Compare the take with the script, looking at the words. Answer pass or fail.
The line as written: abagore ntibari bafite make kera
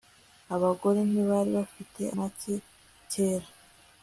pass